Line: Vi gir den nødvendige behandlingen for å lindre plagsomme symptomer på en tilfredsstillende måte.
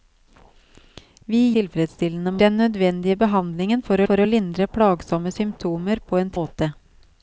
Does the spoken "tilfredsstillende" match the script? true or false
false